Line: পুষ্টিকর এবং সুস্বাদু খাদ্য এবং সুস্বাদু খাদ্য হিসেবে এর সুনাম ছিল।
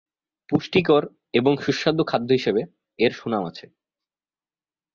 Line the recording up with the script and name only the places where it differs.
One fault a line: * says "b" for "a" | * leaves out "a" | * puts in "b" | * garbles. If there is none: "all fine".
* leaves out "এবং সুস্বাদু খাদ্য"
* says "আছে" for "ছিল"